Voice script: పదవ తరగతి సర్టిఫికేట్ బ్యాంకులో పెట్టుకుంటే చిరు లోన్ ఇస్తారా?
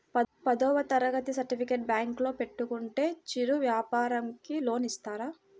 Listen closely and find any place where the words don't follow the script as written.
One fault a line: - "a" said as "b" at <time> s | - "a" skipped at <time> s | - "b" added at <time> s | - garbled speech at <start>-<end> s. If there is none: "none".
- "వ్యాపారంకి" added at 3.6 s